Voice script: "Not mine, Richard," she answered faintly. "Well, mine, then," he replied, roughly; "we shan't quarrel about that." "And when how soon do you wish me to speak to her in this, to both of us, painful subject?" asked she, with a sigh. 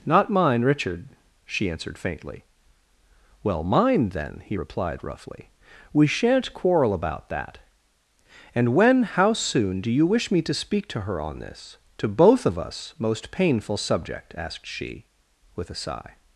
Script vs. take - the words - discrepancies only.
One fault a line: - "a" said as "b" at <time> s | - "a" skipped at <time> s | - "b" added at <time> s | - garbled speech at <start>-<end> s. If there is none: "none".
- "in" said as "on" at 11.2 s
- "most" added at 13.0 s